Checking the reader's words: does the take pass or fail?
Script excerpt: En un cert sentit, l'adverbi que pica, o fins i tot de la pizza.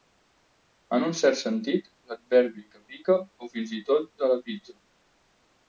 pass